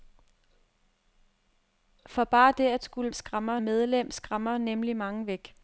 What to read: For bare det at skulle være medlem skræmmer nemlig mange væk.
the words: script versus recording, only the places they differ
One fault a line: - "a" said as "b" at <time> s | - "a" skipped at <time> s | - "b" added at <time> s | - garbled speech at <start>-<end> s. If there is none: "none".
- "være" said as "skræmmer" at 3.1 s